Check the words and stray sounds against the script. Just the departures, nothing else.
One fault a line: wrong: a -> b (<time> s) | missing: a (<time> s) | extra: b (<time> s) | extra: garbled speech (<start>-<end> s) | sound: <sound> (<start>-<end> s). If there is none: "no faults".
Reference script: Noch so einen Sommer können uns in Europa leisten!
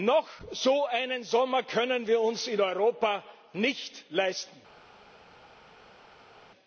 extra: wir (2.1 s)
extra: nicht (3.5 s)